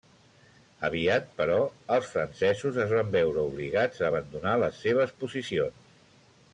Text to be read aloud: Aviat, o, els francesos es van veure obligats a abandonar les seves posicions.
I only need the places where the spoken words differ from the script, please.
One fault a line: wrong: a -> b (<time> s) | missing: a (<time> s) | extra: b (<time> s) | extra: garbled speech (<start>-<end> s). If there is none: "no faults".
wrong: o -> però (1.4 s)